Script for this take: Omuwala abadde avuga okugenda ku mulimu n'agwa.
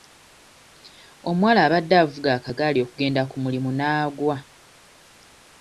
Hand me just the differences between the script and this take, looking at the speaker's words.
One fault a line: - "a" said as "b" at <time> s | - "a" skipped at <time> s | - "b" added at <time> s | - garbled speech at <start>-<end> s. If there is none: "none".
- "akagaali" added at 2.4 s